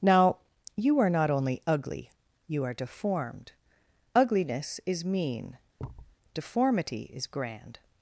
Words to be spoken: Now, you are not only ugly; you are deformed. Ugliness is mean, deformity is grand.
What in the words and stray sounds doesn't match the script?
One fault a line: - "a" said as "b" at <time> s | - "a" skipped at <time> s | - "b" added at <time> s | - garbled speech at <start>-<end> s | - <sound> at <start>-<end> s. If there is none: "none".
- thud at 5.8-6.2 s